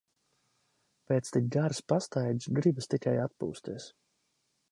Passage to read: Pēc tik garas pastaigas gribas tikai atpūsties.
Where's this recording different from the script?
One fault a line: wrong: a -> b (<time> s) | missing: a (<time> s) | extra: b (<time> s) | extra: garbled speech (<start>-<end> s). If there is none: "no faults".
no faults